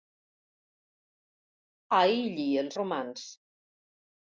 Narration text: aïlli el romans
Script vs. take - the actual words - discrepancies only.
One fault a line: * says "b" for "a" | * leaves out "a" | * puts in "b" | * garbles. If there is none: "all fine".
all fine